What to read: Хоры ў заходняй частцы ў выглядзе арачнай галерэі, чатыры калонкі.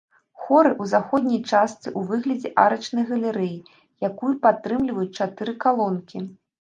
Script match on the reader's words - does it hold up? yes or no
no